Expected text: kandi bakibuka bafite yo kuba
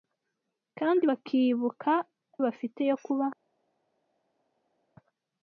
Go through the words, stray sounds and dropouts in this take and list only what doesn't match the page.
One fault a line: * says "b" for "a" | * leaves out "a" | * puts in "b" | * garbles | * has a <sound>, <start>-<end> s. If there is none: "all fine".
all fine